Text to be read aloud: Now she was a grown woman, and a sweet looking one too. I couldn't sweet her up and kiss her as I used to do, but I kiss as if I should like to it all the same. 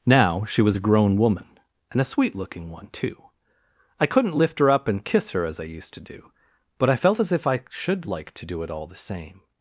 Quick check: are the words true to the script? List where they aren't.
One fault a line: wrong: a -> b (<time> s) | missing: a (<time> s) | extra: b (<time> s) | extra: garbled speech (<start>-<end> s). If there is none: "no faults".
wrong: sweet -> lift (4.4 s)
wrong: kiss -> felt (6.9 s)
extra: do (8.4 s)